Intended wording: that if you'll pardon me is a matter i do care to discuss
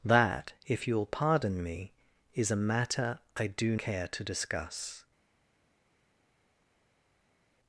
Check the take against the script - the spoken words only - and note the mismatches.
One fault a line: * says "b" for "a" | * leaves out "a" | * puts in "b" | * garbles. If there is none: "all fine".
all fine